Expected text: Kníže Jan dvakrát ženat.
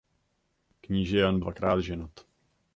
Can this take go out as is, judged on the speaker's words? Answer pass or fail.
pass